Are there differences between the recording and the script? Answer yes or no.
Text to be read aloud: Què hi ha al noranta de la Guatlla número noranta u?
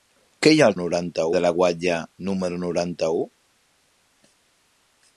no